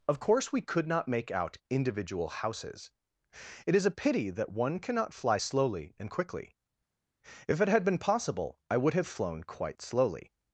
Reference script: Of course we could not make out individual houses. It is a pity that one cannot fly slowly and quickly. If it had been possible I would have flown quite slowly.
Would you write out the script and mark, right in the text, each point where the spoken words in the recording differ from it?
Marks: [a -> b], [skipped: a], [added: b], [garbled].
Of course we could not make out individual houses. It is a pity that one cannot fly slowly and quickly. If it had been possible I would have flown quite slowly.